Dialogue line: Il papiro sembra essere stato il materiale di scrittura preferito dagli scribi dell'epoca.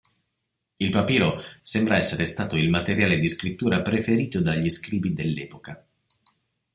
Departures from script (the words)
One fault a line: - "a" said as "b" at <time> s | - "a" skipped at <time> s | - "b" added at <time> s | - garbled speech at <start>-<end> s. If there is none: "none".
none